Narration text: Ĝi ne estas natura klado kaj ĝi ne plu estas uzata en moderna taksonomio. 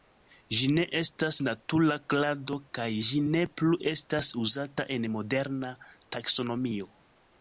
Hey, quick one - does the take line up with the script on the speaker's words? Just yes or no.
yes